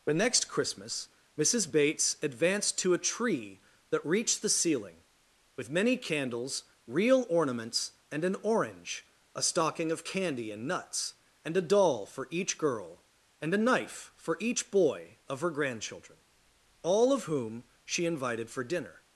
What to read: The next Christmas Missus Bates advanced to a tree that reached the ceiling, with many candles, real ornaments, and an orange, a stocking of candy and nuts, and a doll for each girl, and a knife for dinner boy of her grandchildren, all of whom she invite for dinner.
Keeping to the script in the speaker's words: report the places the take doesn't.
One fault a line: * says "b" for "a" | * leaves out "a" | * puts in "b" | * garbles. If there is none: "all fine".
* says "each" for "dinner"
* says "invited" for "invite"